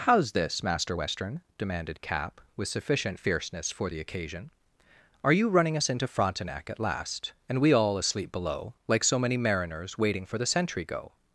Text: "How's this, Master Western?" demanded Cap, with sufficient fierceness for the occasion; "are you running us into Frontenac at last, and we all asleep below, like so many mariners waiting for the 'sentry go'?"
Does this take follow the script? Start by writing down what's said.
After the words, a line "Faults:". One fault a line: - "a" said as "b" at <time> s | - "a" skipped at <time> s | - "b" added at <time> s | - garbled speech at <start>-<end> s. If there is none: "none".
"How's this, Master Western?" demanded Cap, with sufficient fierceness for the occasion; "are you running us into Frontenac at last, and we all asleep below, like so many mariners waiting for the 'sentry go'?"
Faults:
none